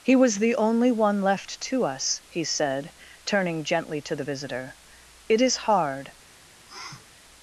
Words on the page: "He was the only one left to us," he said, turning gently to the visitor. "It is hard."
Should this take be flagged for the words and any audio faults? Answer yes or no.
yes